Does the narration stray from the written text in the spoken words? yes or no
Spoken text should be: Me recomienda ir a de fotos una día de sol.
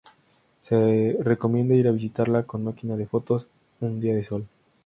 yes